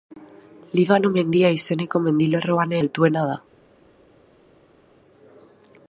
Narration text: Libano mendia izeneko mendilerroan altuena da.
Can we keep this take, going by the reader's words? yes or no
yes